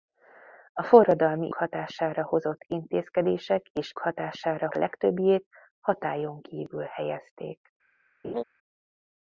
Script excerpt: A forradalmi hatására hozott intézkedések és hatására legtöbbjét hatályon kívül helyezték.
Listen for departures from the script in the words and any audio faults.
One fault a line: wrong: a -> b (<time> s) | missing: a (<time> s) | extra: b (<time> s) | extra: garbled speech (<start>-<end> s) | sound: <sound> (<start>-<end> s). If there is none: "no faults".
sound: laugh (8.2-8.4 s)